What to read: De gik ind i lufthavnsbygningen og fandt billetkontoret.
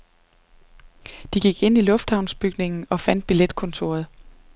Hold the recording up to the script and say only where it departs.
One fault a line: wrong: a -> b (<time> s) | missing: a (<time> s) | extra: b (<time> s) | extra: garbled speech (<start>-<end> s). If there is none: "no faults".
no faults